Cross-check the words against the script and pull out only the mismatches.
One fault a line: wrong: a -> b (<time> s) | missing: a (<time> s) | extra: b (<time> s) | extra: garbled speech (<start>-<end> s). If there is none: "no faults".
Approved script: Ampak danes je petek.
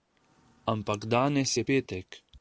no faults